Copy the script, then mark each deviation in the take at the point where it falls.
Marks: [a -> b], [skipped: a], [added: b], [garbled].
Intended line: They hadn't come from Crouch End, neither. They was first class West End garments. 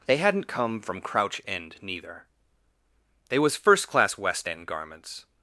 They hadn't come from Crouch End, neither. They was first class West End garments.